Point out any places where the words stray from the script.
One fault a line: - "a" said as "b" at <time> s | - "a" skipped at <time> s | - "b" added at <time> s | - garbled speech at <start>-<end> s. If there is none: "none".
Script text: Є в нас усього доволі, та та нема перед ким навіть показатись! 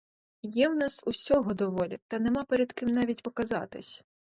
- "та" skipped at 2.2 s